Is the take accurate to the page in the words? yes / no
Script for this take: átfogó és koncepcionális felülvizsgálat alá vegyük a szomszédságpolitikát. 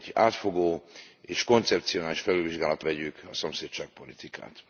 no